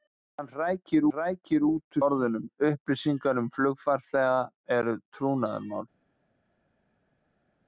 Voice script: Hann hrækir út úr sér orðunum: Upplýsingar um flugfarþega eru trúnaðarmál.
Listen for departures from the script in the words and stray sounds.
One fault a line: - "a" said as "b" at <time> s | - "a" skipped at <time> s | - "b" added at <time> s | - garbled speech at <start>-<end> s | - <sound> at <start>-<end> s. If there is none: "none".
- "hrækir" added at 1.1 s
- "sér" skipped at 2.0 s